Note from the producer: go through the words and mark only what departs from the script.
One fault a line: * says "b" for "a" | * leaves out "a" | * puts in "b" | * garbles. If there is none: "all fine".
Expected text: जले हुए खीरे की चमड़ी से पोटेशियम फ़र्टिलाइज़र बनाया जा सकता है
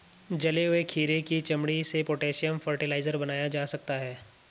all fine